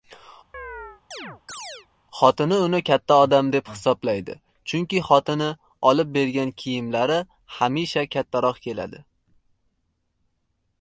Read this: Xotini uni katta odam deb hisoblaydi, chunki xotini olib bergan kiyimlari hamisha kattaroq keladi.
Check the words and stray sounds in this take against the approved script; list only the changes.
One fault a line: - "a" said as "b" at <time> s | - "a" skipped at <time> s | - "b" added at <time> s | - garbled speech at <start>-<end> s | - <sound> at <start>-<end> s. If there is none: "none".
- chirp at 0.5-1.9 s